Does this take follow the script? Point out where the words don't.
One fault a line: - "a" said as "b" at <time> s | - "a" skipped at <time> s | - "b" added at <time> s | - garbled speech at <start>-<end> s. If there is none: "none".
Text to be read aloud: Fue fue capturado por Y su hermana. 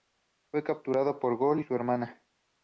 - "fue" skipped at 0.6 s
- "Gol" added at 1.4 s